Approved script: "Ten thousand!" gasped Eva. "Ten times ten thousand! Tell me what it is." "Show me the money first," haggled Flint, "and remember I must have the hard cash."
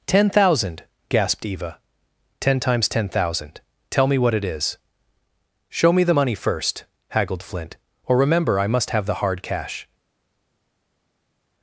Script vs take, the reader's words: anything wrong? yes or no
yes